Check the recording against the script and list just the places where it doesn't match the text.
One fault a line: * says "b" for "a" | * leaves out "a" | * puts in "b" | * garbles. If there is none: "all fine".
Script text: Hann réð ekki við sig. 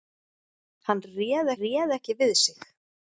* puts in "réð"